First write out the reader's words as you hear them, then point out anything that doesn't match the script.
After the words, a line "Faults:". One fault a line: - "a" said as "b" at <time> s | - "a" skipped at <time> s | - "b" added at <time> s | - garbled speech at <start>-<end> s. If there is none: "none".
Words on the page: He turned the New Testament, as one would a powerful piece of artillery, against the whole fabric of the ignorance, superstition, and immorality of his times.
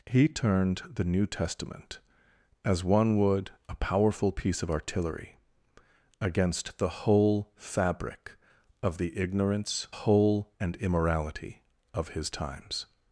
He turned the New Testament, as one would a powerful piece of artillery, against the whole fabric of the ignorance, whole, and immorality of his times.
Faults:
- "superstition" said as "whole" at 9.9 s